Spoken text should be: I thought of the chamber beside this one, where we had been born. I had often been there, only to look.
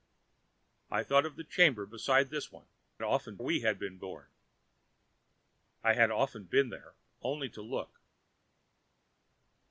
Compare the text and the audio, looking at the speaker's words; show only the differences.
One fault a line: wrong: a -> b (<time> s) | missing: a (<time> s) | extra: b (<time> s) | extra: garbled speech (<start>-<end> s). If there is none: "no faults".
wrong: where -> often (3.0 s)